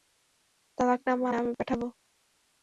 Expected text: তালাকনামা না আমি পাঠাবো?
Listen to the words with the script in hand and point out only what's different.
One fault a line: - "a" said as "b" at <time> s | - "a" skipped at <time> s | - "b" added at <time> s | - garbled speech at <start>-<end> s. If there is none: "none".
none